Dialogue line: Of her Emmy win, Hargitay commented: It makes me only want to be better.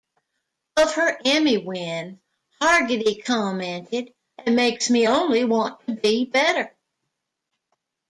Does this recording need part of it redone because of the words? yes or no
no